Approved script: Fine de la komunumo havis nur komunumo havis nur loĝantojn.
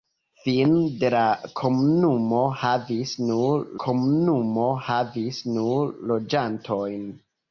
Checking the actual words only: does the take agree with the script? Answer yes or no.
yes